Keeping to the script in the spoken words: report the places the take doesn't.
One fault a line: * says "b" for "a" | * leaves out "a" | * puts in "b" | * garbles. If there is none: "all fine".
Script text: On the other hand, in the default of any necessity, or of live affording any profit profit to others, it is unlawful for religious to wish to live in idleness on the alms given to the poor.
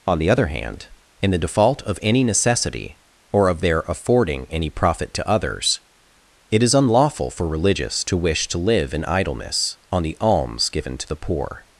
* says "their" for "live"
* leaves out "profit"